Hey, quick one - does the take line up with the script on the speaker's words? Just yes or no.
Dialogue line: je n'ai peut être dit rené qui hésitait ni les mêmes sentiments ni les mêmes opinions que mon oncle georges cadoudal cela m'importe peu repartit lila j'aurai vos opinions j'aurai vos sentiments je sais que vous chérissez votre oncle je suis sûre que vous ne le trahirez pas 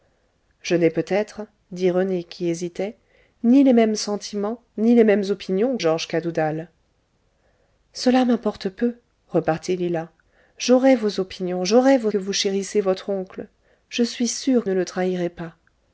no